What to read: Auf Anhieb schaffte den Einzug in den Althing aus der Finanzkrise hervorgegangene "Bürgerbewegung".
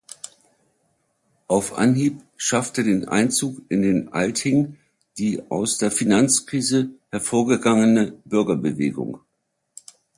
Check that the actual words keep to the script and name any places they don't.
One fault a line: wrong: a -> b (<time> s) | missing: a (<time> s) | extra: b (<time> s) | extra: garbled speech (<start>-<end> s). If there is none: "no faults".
extra: die (5.2 s)